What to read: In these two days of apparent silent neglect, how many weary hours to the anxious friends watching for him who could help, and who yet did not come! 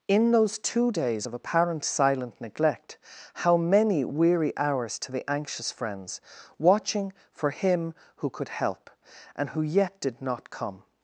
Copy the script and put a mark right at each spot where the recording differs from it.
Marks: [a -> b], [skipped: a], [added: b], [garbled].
In [these -> those] two days of apparent silent neglect, how many weary hours to the anxious friends watching for him who could help, and who yet did not come!